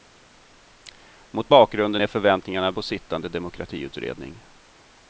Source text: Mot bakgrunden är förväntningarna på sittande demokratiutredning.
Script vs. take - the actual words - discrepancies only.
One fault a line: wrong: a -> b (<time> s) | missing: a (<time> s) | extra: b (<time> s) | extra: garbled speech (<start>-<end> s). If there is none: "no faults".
no faults